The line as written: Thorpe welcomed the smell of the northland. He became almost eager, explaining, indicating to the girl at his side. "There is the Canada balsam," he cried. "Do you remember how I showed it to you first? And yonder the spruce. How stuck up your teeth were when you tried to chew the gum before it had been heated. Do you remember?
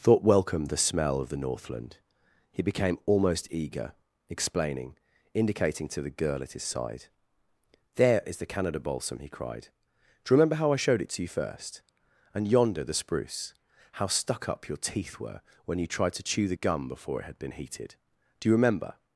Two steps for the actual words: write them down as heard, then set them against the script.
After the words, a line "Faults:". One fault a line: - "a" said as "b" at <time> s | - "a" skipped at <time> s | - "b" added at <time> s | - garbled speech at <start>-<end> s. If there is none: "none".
Thought welcomed the smell of the northland. He became almost eager, explaining, indicating to the girl at his side. "There is the Canada balsam," he cried. "Do you remember how I showed it to you first? And yonder the spruce. How stuck up your teeth were when you tried to chew the gum before it had been heated. Do you remember?
Faults:
- "Thorpe" said as "Thought" at 0.0 s